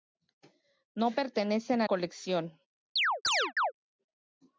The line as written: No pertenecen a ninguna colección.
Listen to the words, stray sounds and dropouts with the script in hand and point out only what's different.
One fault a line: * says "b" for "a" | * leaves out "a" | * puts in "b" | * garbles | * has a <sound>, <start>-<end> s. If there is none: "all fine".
* leaves out "ninguna"
* has a chirp, 3.0-3.7 s